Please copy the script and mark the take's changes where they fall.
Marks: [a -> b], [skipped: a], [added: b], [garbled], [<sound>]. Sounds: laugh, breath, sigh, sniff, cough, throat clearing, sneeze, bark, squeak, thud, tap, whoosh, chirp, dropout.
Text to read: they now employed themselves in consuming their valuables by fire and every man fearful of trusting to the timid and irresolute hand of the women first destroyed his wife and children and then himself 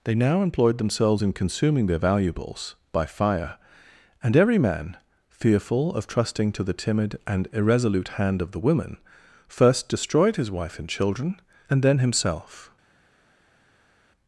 they now employed themselves in consuming their valuables by fire and every man fearful of trusting to the timid and irresolute hand of the women first destroyed his wife and children and then himself